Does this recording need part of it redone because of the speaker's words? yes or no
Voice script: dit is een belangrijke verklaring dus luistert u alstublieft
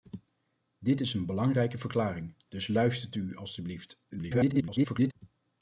yes